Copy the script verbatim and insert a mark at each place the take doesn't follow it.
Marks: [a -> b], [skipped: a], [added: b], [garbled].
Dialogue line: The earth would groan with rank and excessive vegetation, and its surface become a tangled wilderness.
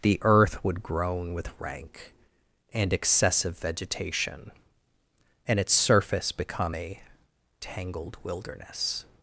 The earth would groan with rank and excessive vegetation, and its surface become a tangled wilderness.